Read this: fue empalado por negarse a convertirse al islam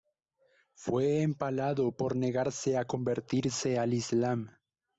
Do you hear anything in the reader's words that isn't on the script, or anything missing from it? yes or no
no